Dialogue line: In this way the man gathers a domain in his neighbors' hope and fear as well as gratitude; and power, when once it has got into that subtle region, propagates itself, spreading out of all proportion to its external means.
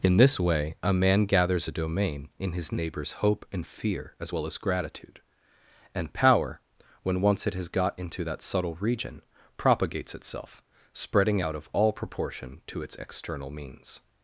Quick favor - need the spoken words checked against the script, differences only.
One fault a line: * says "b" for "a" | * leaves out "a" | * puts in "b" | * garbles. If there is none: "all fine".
* says "a" for "the"